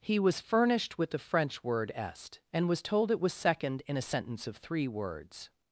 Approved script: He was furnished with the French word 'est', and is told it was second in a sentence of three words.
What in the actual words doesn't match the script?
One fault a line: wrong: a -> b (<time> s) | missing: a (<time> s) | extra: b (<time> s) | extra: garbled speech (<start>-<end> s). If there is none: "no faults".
wrong: is -> was (2.7 s)